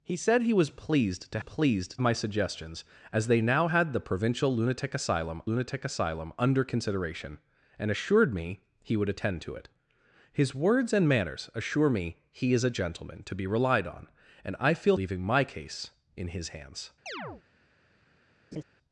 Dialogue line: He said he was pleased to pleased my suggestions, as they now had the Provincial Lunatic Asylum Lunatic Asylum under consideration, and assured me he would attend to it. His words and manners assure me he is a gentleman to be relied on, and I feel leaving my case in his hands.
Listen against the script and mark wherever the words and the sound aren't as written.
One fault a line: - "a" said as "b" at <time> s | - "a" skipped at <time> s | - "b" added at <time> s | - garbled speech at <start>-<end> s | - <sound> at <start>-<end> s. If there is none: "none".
- chirp at 17.1-17.4 s
- laugh at 18.5-18.6 s